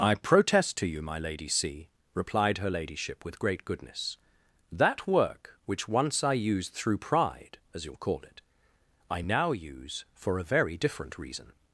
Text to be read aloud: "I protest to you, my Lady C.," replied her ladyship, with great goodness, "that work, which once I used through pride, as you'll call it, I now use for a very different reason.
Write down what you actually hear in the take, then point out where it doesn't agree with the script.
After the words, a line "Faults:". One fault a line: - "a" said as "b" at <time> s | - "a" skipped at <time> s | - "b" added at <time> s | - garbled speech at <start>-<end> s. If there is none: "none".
"I protest to you, my Lady C.," replied her ladyship, with great goodness, "that work, which once I used through pride, as you'll call it, I now use for a very different reason.
Faults:
none